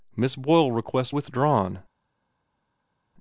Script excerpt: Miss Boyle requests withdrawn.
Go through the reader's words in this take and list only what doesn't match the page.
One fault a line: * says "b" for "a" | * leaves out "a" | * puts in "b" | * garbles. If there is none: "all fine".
all fine